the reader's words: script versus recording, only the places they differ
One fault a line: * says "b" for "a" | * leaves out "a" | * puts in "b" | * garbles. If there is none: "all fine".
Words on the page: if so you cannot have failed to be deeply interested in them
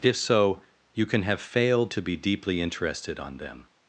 * says "can" for "cannot"
* says "on" for "in"